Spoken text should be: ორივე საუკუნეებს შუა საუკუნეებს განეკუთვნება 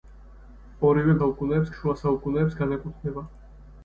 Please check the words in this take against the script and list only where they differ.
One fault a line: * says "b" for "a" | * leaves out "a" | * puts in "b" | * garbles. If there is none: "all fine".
all fine